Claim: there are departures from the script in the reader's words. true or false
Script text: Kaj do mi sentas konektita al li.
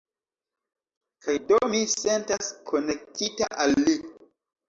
false